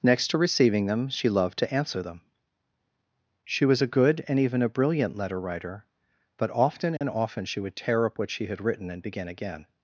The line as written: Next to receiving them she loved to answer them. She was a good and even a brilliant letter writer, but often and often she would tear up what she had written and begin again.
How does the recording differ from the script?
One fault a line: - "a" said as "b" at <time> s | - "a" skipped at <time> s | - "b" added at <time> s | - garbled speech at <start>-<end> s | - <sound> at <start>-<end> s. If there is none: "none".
- dropout at 7.0-7.0 s